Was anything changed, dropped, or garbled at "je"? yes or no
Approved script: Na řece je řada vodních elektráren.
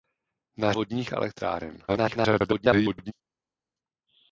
yes